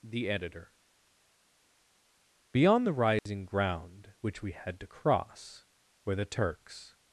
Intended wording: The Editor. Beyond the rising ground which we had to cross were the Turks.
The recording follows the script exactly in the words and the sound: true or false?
false